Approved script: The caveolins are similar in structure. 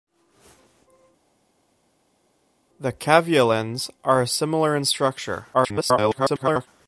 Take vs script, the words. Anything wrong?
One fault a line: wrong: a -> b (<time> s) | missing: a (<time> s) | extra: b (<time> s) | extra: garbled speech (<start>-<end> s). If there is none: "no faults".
extra: garbled speech (5.5-6.7 s)